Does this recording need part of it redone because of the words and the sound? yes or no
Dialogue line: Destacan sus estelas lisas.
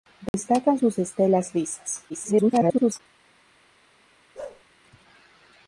yes